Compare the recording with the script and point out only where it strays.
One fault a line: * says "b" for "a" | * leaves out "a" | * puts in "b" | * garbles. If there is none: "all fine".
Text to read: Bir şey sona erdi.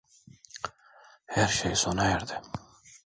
* says "Her" for "Bir"